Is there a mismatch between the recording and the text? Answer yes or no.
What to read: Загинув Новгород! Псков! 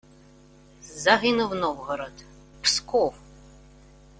no